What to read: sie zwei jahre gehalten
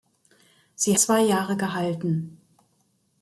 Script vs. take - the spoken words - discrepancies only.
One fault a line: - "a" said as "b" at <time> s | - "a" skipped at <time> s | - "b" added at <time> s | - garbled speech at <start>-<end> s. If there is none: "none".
none